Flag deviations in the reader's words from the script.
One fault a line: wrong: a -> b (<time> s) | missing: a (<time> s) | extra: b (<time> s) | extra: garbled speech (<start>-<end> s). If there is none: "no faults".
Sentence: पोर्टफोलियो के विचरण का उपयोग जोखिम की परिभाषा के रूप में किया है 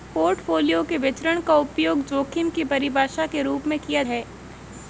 no faults